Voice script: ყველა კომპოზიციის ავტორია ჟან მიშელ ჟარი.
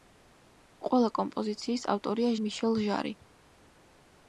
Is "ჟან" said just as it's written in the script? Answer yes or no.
no